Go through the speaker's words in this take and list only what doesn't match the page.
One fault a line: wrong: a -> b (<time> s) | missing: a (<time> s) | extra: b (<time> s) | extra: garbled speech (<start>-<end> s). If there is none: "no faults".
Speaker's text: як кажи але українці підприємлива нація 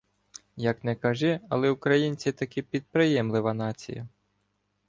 extra: не (0.8 s)
extra: таки (2.3 s)